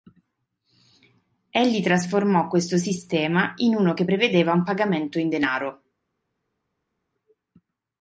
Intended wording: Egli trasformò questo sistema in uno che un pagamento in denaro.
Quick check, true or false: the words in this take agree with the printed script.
false